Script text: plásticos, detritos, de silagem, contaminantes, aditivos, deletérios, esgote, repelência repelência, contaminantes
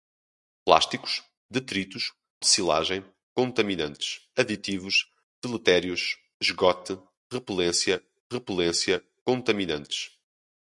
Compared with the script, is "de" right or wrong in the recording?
right